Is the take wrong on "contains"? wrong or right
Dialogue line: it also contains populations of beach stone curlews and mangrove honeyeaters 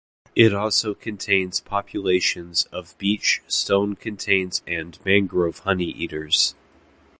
right